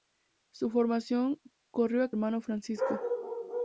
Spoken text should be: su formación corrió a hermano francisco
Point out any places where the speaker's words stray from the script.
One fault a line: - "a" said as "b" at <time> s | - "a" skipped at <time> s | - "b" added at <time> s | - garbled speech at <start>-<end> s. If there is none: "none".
none